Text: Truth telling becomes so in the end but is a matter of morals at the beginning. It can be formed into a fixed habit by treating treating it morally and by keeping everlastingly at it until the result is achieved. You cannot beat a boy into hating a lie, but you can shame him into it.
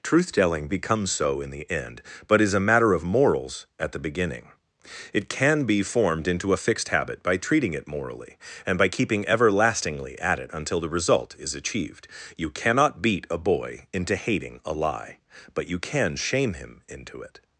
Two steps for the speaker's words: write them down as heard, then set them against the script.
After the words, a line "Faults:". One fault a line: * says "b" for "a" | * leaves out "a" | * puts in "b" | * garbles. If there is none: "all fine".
Truth telling becomes so in the end but is a matter of morals at the beginning. It can be formed into a fixed habit by treating it morally and by keeping everlastingly at it until the result is achieved. You cannot beat a boy into hating a lie, but you can shame him into it.
Faults:
* leaves out "treating"